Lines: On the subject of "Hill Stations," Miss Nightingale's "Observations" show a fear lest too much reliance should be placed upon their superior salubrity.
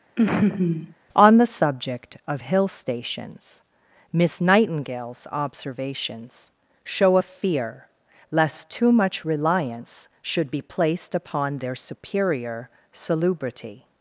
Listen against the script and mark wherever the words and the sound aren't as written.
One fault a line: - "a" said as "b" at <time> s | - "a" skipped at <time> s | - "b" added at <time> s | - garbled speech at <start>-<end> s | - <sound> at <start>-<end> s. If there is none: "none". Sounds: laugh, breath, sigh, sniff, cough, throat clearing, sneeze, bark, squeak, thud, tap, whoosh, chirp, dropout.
- laugh at 0.2-0.9 s